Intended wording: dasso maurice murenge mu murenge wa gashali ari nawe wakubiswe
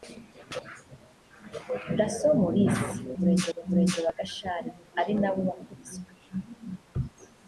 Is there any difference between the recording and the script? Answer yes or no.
no